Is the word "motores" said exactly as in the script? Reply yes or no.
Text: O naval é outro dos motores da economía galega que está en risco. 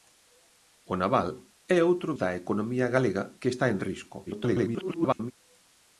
no